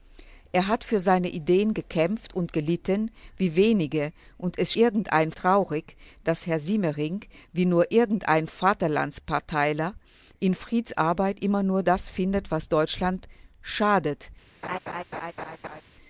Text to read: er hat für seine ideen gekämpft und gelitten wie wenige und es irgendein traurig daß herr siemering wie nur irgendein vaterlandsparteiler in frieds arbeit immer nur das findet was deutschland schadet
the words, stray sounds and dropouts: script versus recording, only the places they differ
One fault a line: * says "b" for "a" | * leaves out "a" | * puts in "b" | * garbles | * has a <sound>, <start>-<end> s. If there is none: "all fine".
* has a laugh, 14.6-15.8 s